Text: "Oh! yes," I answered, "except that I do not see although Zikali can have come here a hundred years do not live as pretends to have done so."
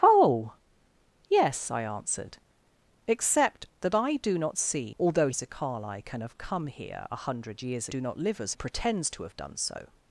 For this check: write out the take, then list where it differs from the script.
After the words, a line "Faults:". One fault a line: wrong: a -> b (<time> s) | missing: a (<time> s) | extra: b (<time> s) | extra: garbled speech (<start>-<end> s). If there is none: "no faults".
"Oh! yes," I answered, "except that I do not see although Zikali can have come here a hundred years do not live as pretends to have done so."
Faults:
no faults